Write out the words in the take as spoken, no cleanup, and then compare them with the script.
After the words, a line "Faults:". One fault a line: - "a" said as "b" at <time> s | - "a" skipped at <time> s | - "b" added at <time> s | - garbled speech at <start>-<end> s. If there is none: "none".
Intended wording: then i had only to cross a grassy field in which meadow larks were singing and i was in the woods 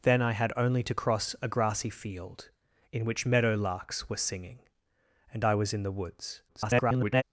then i had only to cross a grassy field in which meadow larks were singing and i was in the woods [garbled]
Faults:
- garbled speech at 6.5-7.2 s